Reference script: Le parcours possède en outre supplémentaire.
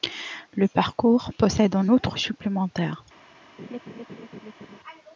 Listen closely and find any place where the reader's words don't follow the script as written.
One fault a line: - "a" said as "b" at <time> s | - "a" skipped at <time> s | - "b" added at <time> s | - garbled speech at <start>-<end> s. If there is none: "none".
none